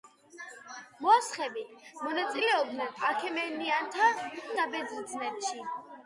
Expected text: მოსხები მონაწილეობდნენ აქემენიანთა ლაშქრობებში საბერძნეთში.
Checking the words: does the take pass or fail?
fail